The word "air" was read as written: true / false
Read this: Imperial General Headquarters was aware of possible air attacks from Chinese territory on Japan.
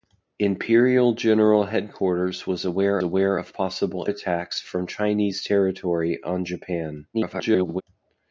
false